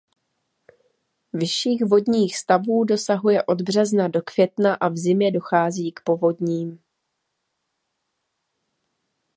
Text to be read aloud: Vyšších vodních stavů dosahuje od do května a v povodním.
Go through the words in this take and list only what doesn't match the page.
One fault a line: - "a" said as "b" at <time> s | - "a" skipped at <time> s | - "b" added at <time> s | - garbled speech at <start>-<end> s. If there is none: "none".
- "března" added at 3.6 s
- "zimě dochází k" added at 5.0 s